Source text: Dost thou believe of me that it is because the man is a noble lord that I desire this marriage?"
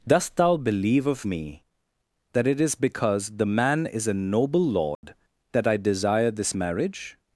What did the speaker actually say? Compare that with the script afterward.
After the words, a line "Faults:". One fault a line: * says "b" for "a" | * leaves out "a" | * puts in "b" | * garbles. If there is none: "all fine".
Dost thou believe of me that it is because the man is a noble lord that I desire this marriage?"
Faults:
all fine